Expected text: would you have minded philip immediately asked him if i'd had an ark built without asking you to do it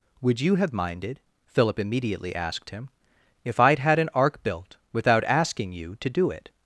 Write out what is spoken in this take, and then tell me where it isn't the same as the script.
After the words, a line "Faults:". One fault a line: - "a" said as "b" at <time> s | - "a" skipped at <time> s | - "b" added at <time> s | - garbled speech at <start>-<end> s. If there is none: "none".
would you have minded philip immediately asked him if i'd had an ark built without asking you to do it
Faults:
none